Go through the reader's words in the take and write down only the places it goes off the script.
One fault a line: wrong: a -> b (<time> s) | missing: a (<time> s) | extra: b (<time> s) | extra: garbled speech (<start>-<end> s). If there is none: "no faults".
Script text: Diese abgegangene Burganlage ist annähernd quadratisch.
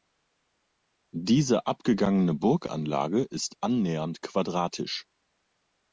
no faults